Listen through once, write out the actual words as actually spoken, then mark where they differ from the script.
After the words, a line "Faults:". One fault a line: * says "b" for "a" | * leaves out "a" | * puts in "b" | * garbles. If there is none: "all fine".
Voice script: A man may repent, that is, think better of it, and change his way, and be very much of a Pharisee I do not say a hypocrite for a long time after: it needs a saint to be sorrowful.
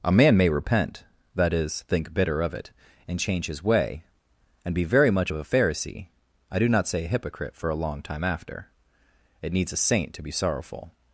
A man may repent, that is, think bitter of it, and change his way, and be very much of a Pharisee I do not say a hypocrite for a long time after: it needs a saint to be sorrowful.
Faults:
* says "bitter" for "better"